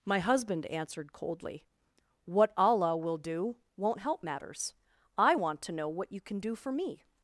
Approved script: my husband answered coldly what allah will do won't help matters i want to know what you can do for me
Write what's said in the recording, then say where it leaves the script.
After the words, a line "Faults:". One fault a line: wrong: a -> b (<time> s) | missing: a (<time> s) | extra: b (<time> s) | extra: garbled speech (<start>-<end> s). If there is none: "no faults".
my husband answered coldly what allah will do won't help matters i want to know what you can do for me
Faults:
no faults